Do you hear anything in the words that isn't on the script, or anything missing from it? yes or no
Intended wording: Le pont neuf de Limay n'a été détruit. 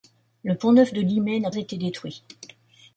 no